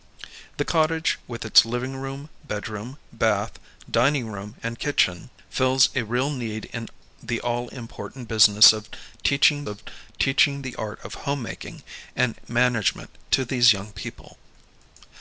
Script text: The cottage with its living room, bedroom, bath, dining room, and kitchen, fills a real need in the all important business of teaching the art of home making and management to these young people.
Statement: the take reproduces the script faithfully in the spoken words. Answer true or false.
false